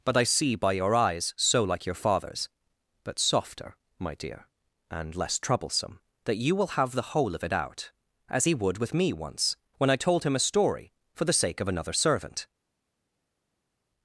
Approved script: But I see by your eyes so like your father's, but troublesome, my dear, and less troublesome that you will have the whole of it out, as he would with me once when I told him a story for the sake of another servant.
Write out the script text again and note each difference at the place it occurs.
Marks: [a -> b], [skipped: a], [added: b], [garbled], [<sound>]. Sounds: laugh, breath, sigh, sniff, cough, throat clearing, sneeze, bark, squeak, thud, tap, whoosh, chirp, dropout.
But I see by your eyes so like your father's, but [troublesome, -> softer] my dear, and less troublesome that you will have the whole of it out, as he would with me once when I told him a story for the sake of another servant.